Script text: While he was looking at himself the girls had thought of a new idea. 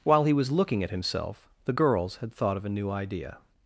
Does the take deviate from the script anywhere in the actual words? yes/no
no